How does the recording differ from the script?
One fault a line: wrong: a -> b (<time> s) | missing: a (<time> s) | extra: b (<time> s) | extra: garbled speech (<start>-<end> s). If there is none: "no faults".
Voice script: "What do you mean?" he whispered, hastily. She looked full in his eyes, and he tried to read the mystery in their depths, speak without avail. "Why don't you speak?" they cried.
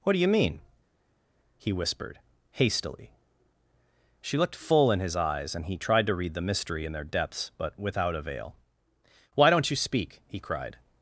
wrong: speak -> but (7.6 s)
wrong: they -> he (10.3 s)